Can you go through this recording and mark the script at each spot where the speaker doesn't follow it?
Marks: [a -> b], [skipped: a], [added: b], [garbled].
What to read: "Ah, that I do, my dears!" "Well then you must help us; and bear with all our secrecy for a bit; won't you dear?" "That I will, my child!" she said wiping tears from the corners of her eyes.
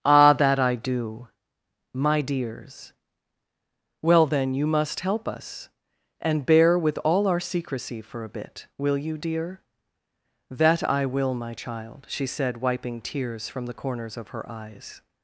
"Ah, that I do, my dears!" "Well then you must help us; and bear with all our secrecy for a bit; [won't -> will] you dear?" "That I will, my child!" she said wiping tears from the corners of her eyes.